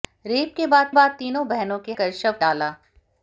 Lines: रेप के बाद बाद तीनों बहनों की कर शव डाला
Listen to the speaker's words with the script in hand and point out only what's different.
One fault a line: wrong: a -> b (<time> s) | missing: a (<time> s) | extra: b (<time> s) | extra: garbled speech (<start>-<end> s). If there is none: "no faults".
no faults